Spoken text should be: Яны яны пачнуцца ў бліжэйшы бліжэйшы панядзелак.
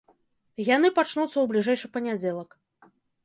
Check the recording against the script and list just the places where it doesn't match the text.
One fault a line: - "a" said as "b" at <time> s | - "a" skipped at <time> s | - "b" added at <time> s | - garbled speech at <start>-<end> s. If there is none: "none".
- "яны" skipped at 0.9 s
- "бліжэйшы" skipped at 1.9 s